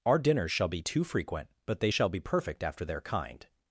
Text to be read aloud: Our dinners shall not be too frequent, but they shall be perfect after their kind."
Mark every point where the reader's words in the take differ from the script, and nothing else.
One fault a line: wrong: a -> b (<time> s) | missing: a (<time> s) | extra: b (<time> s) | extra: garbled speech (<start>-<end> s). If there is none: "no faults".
missing: not (0.7 s)